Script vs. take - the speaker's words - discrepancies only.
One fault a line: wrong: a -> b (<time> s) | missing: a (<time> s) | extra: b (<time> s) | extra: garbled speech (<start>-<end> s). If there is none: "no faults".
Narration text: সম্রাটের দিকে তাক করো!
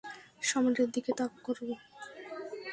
no faults